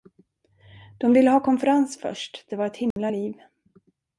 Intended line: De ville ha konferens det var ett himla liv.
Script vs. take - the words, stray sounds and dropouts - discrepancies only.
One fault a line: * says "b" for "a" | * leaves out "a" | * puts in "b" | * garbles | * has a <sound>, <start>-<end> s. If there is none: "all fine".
* puts in "först"
* has a dropout, 2.9-3.0 s